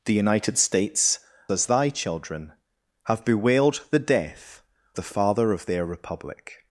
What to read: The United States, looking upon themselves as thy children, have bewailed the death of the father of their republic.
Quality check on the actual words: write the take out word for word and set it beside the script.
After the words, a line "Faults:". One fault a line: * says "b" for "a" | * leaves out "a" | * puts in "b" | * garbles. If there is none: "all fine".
The United States, as thy children, have bewailed the death the father of their republic.
Faults:
* leaves out "looking upon themselves"
* leaves out "of"